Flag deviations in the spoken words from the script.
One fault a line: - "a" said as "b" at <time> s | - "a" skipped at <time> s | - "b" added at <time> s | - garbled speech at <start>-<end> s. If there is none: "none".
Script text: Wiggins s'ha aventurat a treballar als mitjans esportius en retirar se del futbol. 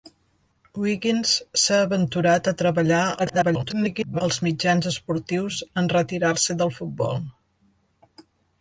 - garbled speech at 3.2-4.2 s